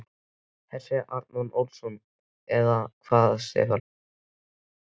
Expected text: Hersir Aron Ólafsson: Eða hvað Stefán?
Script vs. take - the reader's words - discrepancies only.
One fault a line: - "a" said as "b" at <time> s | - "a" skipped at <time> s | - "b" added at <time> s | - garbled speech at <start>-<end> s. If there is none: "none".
none